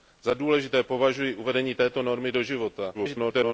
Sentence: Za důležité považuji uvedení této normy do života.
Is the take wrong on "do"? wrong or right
right